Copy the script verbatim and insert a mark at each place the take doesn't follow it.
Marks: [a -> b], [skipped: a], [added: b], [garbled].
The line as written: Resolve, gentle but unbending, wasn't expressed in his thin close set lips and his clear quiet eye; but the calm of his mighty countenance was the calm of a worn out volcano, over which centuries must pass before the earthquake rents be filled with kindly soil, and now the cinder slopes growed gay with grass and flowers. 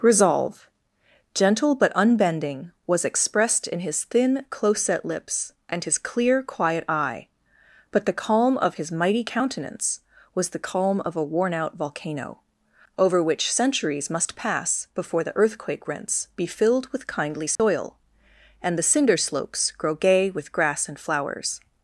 Resolve, gentle but unbending, [wasn't -> was] expressed in his thin close set lips and his clear quiet eye; but the calm of his mighty countenance was the calm of a worn out volcano, over which centuries must pass before the earthquake rents be filled with kindly soil, and [skipped: now] the cinder slopes [growed -> grow] gay with grass and flowers.